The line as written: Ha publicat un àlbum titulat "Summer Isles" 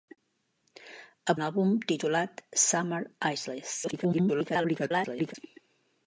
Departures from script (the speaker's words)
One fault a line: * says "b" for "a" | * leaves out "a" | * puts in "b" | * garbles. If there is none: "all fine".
* leaves out "publicat"
* garbles